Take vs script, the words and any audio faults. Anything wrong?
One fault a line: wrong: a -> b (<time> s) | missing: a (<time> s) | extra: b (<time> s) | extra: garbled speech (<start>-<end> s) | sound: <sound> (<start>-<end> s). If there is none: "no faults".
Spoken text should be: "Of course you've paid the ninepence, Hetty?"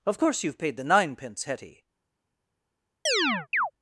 sound: chirp (3.1-3.7 s)